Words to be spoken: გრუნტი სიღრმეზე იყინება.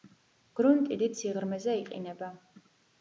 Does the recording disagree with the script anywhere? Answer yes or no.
yes